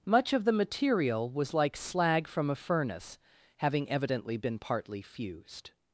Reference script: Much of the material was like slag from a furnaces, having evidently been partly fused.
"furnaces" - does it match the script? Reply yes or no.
no